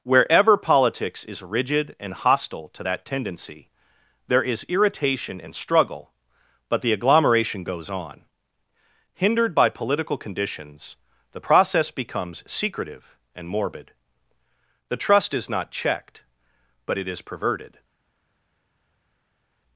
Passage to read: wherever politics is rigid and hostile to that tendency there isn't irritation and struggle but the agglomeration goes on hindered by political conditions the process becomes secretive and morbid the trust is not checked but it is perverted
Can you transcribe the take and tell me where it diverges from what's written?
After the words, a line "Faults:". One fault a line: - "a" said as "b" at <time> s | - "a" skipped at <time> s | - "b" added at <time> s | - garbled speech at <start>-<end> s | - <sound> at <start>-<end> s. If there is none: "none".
wherever politics is rigid and hostile to that tendency there is irritation and struggle but the agglomeration goes on hindered by political conditions the process becomes secretive and morbid the trust is not checked but it is perverted
Faults:
- "isn't" said as "is" at 4.4 s